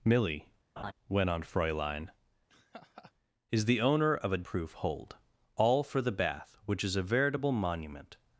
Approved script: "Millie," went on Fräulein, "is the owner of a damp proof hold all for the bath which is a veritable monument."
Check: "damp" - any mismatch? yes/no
yes